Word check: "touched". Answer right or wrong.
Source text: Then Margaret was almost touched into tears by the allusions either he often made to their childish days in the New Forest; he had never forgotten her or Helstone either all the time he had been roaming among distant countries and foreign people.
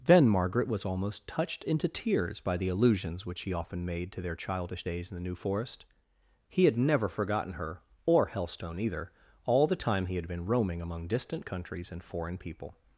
right